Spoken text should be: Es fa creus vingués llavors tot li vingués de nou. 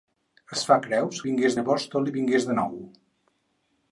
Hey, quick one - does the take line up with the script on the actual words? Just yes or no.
yes